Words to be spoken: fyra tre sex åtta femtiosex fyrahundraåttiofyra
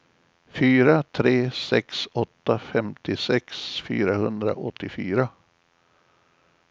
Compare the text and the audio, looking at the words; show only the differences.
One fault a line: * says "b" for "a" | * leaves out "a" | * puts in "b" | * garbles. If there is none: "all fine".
all fine